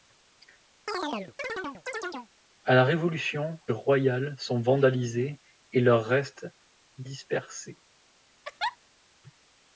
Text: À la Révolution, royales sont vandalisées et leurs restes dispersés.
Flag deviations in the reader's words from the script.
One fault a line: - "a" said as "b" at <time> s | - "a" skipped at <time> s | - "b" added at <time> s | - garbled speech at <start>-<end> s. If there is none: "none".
none